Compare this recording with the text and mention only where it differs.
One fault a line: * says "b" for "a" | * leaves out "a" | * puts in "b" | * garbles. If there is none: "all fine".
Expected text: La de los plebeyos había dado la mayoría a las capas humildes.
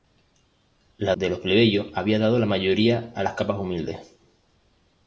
all fine